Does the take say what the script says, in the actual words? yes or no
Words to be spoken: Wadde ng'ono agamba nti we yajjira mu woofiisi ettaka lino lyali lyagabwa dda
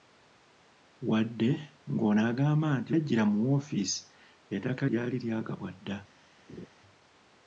no